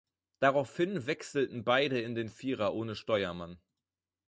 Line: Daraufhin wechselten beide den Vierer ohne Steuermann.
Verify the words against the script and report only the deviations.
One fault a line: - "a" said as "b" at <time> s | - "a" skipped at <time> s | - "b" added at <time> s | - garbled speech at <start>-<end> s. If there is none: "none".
- "in" added at 2.0 s